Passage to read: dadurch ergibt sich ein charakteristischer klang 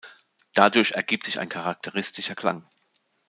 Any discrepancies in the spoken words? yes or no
no